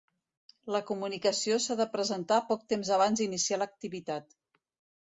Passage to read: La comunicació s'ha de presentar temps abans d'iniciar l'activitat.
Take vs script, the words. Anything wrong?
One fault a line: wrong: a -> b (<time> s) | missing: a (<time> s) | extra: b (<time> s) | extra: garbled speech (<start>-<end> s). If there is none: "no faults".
extra: poc (2.5 s)